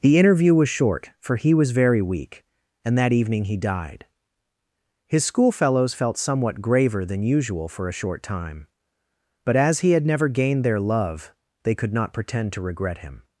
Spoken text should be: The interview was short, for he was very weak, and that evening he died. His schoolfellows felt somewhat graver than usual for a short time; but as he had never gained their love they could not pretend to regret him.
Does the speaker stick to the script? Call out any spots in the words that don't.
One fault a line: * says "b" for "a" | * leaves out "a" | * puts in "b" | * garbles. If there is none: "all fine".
all fine